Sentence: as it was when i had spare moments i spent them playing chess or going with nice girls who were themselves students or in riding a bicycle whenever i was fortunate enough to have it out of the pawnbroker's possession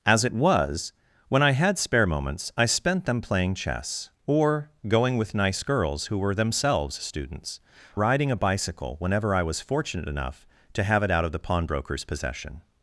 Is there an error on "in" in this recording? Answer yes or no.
yes